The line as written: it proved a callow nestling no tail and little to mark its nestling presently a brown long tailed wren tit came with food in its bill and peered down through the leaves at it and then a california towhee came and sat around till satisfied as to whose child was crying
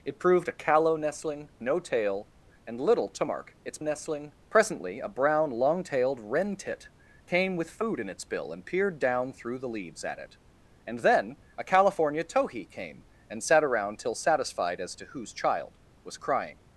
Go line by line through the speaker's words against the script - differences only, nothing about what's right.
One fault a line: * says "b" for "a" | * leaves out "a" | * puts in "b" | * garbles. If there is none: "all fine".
all fine